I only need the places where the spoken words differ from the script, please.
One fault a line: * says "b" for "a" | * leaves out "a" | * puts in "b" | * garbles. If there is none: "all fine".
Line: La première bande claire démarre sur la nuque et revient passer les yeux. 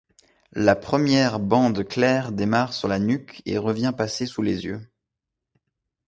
* puts in "sous"